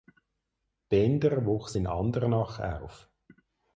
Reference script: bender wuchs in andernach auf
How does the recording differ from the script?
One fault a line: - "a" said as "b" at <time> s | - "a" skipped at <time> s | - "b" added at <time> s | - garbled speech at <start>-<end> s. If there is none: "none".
none